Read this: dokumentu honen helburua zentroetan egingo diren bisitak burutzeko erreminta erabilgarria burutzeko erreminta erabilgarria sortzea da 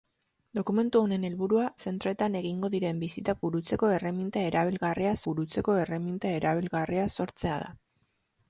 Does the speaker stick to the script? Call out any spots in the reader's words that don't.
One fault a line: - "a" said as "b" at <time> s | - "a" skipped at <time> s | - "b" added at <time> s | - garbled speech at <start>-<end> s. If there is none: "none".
none